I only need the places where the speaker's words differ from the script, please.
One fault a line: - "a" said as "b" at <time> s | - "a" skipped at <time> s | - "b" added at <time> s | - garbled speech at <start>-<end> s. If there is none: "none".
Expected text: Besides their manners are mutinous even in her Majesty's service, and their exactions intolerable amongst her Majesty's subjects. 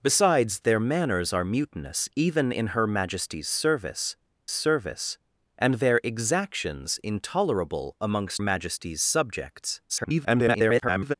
- "service" added at 4.5 s
- "her" skipped at 8.4 s
- garbled speech at 9.9-11.1 s